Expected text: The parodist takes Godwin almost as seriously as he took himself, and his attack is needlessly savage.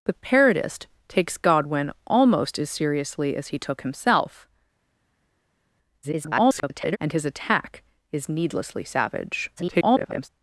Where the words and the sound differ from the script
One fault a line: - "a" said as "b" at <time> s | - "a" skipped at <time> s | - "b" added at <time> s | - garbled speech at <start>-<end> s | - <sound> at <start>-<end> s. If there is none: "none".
- garbled speech at 6.0-7.0 s
- garbled speech at 9.6-10.3 s